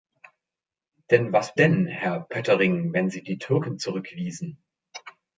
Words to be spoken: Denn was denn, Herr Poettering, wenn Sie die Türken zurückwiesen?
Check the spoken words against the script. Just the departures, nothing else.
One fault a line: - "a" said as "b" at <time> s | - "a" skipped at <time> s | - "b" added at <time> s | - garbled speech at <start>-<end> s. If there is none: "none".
none